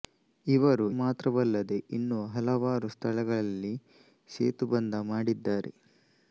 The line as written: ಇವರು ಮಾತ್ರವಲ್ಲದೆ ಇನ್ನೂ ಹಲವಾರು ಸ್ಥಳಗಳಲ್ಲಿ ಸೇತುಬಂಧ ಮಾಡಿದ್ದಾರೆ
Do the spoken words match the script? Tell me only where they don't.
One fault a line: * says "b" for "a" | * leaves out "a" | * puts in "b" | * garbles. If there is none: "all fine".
all fine